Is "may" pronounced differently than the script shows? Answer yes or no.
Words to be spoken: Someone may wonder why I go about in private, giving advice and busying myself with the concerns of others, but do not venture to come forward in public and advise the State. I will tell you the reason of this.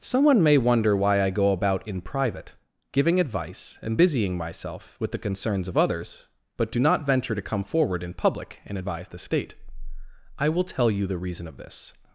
no